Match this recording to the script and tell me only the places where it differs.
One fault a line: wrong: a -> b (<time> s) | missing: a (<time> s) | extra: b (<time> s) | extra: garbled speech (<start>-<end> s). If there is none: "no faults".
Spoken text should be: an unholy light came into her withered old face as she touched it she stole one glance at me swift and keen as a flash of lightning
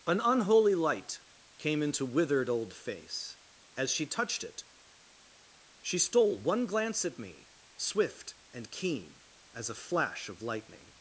missing: her (2.1 s)